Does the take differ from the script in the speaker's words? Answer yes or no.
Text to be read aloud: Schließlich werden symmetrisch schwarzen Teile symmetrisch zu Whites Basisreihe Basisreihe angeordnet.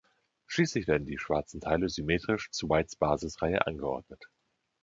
yes